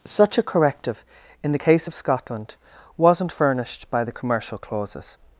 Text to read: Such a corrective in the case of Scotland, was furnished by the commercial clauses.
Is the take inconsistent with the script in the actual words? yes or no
yes